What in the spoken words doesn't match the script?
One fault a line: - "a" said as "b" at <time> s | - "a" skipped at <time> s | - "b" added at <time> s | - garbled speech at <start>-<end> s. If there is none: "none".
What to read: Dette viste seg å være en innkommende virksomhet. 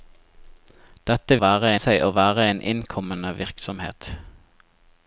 - "viste" said as "være" at 1.4 s